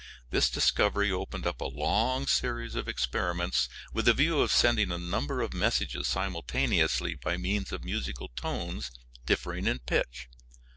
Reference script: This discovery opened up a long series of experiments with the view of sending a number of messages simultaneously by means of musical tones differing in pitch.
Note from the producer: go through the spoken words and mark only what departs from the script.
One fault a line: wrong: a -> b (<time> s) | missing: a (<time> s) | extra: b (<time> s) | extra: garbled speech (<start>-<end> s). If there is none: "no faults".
no faults